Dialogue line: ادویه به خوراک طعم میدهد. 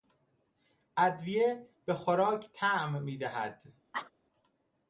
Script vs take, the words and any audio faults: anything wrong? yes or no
yes